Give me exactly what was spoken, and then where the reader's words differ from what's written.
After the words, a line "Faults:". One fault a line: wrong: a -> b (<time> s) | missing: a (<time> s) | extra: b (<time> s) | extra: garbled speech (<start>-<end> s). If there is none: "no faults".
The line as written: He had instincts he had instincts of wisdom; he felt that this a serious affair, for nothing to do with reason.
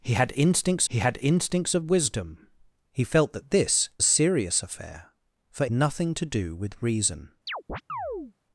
He had instincts he had instincts of wisdom; he felt that this a serious affair, for nothing to do with reason.
Faults:
no faults